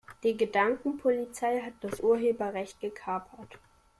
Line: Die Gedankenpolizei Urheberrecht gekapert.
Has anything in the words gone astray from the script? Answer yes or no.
yes